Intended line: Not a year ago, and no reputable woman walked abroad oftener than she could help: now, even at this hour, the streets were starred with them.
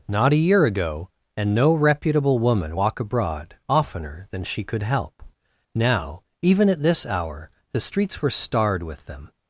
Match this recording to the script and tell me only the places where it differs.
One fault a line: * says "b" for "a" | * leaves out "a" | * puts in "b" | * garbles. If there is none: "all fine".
* says "walk" for "walked"